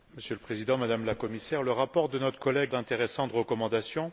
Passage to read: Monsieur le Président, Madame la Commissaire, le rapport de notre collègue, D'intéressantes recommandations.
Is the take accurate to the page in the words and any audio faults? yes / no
yes